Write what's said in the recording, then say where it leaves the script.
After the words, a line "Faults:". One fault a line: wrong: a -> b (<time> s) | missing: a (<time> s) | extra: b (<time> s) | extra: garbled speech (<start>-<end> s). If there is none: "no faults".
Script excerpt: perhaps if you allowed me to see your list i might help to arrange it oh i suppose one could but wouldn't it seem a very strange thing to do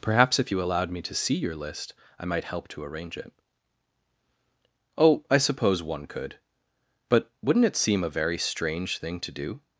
perhaps if you allowed me to see your list i might help to arrange it oh i suppose one could but wouldn't it seem a very strange thing to do
Faults:
no faults